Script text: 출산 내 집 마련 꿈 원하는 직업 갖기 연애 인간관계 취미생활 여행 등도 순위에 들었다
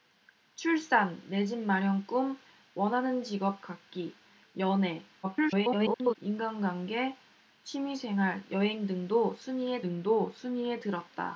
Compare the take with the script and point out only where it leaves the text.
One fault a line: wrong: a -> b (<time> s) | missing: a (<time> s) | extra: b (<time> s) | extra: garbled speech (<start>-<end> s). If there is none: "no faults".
extra: garbled speech (5.2-6.2 s)
extra: 등도 순위에 (9.8 s)